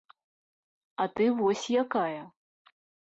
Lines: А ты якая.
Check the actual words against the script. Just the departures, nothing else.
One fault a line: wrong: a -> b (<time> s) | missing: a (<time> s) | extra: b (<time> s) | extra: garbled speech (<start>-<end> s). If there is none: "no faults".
extra: вось (1.4 s)